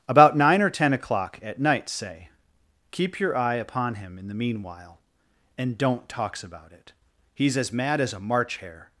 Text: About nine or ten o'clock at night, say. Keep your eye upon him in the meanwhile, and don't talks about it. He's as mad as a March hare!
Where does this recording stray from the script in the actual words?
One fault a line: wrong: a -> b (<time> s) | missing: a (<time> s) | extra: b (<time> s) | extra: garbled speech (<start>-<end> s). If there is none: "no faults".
no faults